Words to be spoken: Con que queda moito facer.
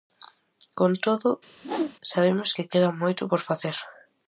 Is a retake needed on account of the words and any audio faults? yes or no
yes